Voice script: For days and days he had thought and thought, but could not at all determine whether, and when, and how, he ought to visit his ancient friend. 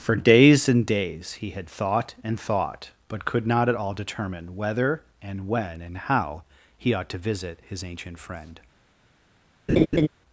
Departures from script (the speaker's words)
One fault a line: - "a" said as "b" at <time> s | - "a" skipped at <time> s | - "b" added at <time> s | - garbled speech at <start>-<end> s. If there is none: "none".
none